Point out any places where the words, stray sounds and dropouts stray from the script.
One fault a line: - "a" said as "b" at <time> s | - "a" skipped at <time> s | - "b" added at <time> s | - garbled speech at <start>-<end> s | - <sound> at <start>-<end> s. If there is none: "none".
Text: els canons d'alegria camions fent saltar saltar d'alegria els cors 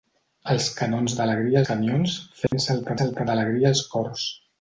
- dropout at 2.5-2.5 s